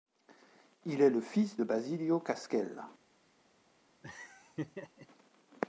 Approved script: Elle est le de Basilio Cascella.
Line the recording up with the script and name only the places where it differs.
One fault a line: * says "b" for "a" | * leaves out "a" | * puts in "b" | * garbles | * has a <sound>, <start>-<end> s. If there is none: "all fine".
* says "Il" for "Elle"
* puts in "fils"
* has a laugh, 4.0-5.1 s